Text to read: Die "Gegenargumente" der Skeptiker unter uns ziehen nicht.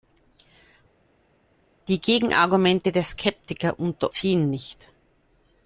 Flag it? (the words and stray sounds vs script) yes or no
yes